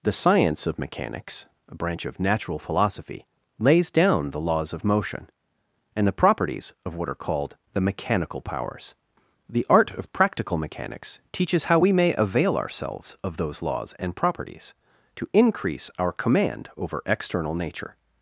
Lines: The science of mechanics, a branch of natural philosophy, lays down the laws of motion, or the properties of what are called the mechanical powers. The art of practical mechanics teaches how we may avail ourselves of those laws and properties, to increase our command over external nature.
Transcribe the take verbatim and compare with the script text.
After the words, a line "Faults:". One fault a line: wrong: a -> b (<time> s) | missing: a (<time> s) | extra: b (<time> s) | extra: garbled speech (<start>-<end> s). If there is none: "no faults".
The science of mechanics, a branch of natural philosophy, lays down the laws of motion, and the properties of what are called the mechanical powers. The art of practical mechanics teaches how we may avail ourselves of those laws and properties, to increase our command over external nature.
Faults:
wrong: or -> and (5.9 s)